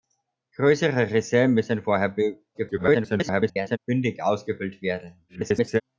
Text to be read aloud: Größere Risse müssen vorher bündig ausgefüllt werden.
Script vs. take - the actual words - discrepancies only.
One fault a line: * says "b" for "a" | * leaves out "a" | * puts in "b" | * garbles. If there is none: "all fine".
* garbles
* garbles